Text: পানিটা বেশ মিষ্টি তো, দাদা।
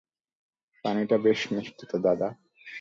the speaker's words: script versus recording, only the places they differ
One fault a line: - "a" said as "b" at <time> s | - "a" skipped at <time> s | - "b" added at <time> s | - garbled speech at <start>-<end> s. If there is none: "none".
none